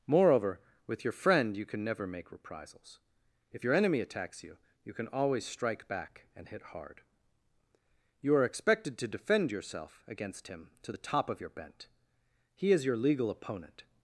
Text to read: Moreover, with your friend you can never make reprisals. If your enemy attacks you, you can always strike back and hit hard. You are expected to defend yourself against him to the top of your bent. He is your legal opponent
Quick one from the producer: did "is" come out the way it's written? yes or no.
yes